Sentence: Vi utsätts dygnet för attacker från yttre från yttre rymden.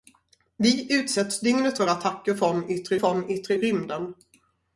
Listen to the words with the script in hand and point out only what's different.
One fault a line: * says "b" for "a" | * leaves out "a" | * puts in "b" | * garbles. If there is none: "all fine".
all fine